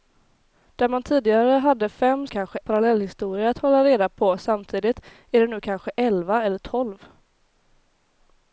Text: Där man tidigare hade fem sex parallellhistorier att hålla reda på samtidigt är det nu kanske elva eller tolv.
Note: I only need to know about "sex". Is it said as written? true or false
false